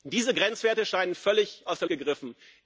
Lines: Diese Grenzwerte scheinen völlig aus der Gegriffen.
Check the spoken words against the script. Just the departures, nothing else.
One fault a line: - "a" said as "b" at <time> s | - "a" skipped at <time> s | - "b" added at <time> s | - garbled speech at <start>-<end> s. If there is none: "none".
none